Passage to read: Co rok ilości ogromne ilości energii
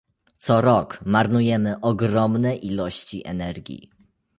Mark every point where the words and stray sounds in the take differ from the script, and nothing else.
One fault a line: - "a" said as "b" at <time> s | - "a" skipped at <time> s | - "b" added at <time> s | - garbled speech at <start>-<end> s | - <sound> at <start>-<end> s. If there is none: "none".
- "ilości" said as "marnujemy" at 1.1 s